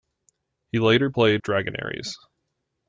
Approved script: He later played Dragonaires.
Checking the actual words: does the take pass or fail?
pass